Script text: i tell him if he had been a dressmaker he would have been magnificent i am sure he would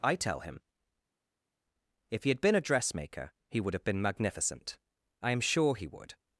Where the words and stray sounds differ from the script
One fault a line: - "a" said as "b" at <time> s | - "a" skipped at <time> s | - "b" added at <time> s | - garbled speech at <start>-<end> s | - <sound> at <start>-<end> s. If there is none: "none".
none